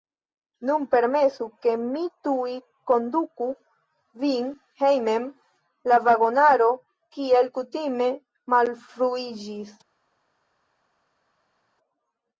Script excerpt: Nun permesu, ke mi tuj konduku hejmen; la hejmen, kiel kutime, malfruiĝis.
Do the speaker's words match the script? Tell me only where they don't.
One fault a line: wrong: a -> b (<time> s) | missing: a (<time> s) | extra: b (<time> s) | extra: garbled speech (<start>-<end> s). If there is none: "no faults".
extra: vin (4.2 s)
wrong: hejmen -> vagonaro (6.0 s)